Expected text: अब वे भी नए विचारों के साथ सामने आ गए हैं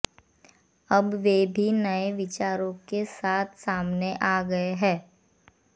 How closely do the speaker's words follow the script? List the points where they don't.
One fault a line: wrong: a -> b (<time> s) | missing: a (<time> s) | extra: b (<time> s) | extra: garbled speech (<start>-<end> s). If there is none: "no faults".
no faults